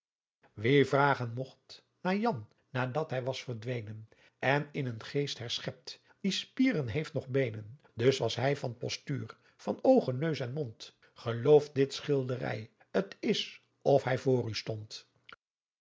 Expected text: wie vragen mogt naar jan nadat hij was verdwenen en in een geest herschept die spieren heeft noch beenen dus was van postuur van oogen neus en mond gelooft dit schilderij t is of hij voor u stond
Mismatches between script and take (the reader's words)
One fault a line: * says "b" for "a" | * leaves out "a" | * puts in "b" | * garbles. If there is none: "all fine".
* puts in "hij"